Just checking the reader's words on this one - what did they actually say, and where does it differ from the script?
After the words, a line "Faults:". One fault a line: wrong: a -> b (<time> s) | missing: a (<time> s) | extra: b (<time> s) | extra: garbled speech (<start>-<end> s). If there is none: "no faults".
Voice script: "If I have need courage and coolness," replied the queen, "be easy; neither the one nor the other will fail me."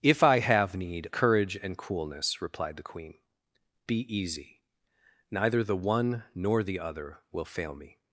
"If I have need courage and coolness," replied the queen, "be easy; neither the one nor the other will fail me."
Faults:
no faults